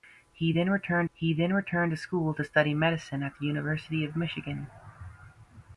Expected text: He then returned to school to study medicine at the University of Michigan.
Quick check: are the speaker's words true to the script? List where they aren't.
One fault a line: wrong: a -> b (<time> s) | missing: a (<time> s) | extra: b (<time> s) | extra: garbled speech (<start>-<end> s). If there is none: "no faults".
extra: he then returned (1.1 s)